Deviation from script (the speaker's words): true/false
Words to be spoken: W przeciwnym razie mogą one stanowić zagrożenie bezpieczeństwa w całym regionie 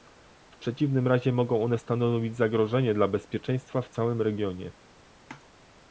true